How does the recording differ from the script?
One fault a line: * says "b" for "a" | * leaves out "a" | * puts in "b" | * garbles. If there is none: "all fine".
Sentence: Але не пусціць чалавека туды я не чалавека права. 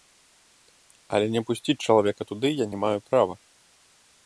* says "маю" for "чалавека"